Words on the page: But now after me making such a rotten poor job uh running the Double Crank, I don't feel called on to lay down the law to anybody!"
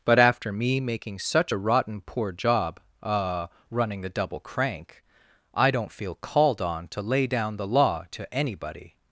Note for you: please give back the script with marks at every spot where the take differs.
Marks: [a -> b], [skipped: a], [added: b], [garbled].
But [skipped: now] after me making such a rotten poor job uh running the Double Crank, I don't feel called on to lay down the law to anybody!"